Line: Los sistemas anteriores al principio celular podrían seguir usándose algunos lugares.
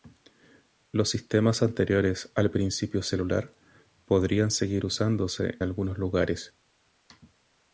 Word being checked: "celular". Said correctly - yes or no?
yes